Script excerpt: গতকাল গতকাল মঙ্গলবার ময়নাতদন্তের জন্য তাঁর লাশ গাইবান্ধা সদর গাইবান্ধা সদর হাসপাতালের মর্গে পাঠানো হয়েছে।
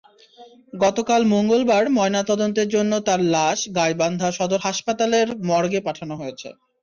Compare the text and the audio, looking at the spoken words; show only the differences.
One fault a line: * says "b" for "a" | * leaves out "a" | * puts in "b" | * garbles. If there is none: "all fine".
* leaves out "গতকাল"
* leaves out "গাইবান্ধা সদর"